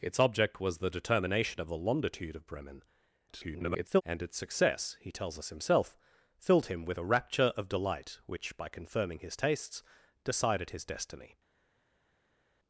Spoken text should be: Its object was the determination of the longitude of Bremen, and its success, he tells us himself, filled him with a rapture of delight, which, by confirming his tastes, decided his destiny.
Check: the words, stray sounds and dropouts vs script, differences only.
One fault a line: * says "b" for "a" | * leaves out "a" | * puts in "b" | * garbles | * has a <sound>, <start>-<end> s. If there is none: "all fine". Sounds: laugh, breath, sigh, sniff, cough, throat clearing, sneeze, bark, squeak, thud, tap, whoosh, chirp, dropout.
* garbles